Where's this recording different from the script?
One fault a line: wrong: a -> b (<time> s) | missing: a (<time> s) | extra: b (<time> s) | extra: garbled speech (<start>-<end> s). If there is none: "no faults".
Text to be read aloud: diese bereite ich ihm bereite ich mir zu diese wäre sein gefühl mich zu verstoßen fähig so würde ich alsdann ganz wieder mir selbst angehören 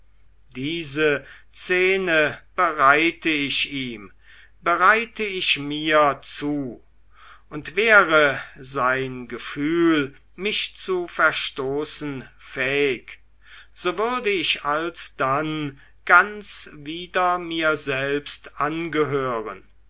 extra: szene (1.5 s)
wrong: diese -> und (7.5 s)